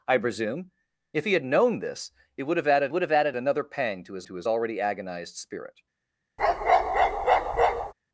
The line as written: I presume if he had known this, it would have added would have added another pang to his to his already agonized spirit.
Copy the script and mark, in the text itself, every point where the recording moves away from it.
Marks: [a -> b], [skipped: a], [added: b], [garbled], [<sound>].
I presume if he had known this, it would have added would have added another pang to his to his already agonized spirit. [bark]